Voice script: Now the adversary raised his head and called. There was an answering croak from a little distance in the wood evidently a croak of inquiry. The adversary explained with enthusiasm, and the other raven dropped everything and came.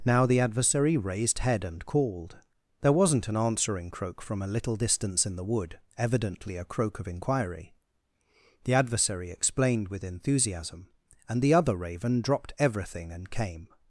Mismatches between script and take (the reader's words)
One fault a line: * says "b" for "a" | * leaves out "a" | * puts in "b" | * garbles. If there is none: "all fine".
* leaves out "his"
* says "wasn't" for "was"